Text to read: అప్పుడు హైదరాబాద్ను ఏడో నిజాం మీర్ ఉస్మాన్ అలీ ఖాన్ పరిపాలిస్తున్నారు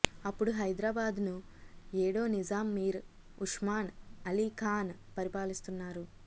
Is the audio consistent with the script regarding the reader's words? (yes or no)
yes